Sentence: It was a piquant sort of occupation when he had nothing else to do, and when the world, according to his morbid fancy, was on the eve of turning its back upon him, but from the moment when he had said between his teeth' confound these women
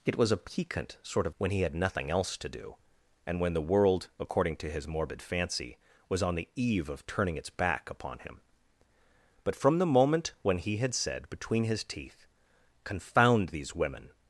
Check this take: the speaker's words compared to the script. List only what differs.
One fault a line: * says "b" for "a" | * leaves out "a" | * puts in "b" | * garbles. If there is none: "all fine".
* leaves out "occupation"